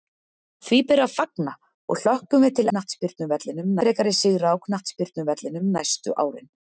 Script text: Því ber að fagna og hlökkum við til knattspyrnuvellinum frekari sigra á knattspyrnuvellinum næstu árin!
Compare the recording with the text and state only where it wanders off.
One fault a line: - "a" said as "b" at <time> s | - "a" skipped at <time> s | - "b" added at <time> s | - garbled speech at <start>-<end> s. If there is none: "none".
none